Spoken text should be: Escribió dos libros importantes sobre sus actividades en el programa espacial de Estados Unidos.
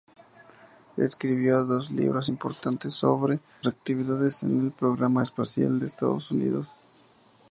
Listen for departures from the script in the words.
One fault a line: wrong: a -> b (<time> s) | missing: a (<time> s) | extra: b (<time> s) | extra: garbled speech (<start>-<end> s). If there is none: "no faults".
missing: sus (3.4 s)